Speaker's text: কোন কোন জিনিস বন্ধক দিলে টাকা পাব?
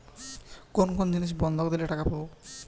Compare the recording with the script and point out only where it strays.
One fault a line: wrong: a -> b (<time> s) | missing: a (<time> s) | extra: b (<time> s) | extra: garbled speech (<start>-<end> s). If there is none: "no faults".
no faults